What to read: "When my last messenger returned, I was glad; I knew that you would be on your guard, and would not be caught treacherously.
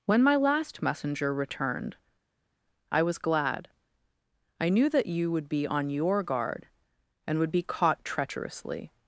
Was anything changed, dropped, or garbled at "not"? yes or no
yes